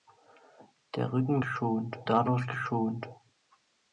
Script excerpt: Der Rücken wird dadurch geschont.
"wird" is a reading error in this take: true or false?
true